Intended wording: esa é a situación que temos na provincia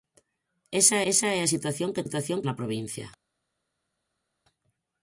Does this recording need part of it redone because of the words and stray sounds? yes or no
yes